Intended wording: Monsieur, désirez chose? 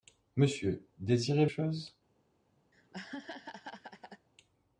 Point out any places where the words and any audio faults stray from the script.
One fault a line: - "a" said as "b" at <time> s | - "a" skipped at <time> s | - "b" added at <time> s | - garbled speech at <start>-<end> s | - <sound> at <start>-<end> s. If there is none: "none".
- laugh at 2.7-4.3 s